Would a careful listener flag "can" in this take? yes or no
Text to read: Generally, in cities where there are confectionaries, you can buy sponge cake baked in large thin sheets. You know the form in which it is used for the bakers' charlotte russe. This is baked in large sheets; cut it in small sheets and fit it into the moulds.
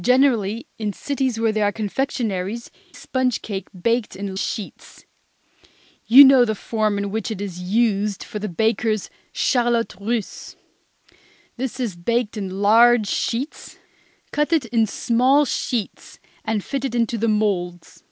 yes